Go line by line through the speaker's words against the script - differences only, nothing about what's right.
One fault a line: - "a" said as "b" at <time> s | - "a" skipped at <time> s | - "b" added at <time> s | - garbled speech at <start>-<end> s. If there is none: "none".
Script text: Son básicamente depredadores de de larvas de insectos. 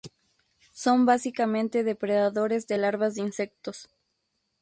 - "de" skipped at 2.8 s